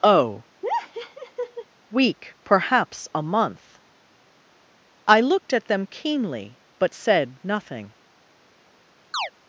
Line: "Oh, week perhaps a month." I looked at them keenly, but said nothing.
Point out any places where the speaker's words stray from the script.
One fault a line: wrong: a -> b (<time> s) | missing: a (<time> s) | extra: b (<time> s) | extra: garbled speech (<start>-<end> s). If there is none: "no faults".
no faults